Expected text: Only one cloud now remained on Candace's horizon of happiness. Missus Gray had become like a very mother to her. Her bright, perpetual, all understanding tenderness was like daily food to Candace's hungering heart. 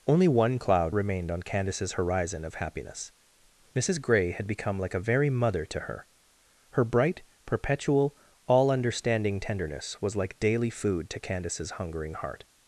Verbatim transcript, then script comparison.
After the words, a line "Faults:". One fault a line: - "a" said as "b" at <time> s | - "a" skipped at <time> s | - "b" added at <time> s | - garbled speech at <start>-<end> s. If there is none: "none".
Only one cloud remained on Candace's horizon of happiness. Missus Gray had become like a very mother to her. Her bright, perpetual, all understanding tenderness was like daily food to Candace's hungering heart.
Faults:
- "now" skipped at 0.9 s